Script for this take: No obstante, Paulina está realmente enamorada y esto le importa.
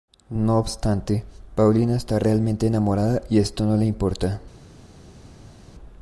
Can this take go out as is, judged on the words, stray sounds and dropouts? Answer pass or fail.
fail